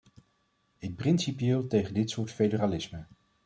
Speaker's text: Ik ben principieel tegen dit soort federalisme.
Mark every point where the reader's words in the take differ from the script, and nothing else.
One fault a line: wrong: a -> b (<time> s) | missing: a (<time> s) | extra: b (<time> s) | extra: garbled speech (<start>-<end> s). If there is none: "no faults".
missing: ben (0.9 s)